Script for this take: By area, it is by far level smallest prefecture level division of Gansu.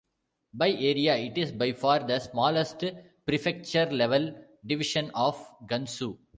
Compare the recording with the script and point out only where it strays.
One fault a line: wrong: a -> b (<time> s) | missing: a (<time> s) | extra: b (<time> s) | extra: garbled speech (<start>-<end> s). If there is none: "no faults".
wrong: level -> the (2.0 s)